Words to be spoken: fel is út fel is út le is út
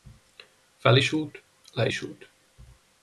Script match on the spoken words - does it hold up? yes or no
no